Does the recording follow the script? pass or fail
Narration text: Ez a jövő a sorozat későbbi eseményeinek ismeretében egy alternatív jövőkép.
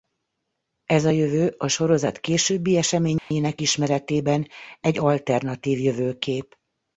pass